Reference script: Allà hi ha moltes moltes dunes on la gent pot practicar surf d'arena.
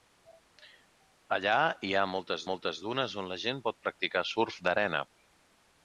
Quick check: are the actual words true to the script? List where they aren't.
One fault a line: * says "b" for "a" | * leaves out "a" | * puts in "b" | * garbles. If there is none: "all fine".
all fine